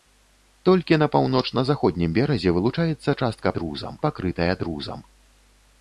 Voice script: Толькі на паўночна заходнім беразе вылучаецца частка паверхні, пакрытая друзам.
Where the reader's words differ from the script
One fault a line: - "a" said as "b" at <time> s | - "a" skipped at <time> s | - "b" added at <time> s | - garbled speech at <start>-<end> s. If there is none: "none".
- "паверхні" said as "друзам" at 3.6 s